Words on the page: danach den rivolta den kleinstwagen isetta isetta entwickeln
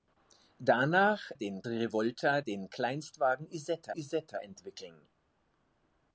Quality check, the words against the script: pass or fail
pass